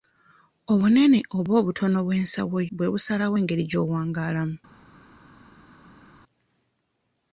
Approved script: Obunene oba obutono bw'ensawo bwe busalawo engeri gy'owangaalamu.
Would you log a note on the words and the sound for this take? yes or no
no